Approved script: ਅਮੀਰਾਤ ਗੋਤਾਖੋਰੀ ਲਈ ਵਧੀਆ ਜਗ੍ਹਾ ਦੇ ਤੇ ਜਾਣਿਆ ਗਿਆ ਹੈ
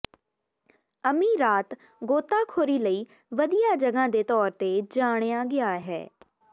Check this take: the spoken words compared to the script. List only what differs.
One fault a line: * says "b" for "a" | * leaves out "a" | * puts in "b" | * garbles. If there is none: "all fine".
* puts in "ਤੌਰ"